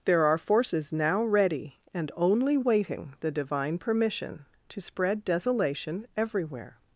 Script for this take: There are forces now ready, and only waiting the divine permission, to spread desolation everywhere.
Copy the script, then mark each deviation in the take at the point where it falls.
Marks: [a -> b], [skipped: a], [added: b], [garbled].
There are forces now ready, and only waiting the divine permission, to spread desolation everywhere.